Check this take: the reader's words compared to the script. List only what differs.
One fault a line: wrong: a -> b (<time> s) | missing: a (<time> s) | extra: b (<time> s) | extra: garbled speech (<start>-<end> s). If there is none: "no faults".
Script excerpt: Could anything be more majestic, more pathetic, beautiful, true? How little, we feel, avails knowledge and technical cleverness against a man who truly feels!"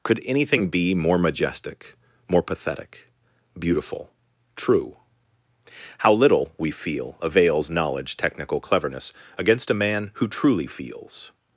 missing: and (8.1 s)